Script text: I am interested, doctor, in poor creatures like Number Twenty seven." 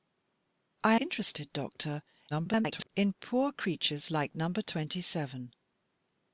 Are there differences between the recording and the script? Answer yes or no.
yes